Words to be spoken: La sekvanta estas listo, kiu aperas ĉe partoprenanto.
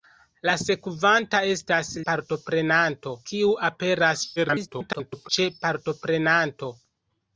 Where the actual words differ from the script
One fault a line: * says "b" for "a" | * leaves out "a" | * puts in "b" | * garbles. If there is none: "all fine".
* says "partoprenanto" for "listo"
* garbles